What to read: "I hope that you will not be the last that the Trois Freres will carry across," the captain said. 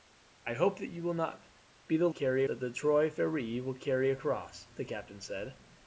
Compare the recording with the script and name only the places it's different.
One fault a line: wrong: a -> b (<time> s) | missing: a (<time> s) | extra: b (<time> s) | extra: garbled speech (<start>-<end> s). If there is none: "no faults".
wrong: last -> carry (2.1 s)